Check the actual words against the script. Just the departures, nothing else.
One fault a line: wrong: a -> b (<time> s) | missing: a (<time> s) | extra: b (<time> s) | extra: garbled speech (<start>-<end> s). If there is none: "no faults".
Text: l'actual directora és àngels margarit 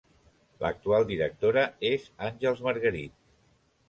no faults